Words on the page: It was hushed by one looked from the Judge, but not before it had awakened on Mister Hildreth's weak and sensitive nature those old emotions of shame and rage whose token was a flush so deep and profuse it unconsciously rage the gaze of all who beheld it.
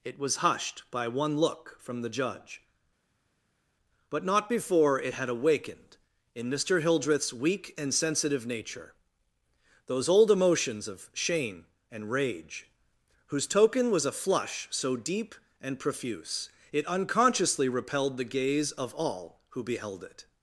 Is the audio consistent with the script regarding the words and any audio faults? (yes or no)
no